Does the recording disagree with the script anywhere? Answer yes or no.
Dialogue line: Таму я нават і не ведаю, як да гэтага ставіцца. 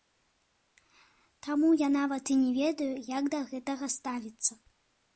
no